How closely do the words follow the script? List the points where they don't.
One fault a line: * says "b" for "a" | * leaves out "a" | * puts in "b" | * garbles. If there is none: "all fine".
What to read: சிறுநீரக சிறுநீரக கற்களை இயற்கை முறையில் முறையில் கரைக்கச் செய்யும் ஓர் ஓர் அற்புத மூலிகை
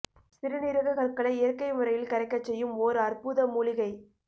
* leaves out "சிறுநீரக"
* leaves out "முறையில்"
* leaves out "ஓர்"